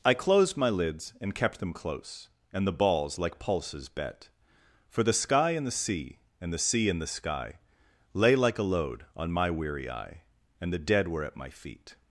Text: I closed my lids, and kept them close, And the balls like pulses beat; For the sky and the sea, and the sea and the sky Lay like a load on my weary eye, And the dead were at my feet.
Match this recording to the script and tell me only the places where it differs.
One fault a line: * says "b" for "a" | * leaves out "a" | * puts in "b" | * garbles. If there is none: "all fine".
* says "bet" for "beat"